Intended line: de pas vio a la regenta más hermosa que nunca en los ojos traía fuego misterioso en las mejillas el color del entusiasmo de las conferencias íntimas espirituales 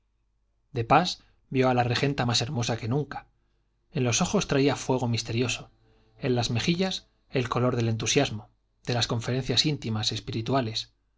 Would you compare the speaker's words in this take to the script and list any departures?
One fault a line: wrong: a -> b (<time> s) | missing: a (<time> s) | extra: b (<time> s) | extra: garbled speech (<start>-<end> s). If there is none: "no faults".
no faults